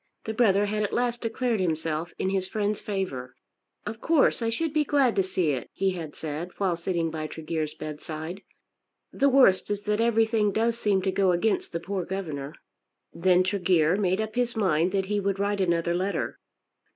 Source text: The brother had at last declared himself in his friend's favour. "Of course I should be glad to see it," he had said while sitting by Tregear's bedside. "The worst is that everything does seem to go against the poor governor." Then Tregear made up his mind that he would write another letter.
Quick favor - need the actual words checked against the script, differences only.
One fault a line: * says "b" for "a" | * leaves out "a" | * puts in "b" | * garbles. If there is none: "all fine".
all fine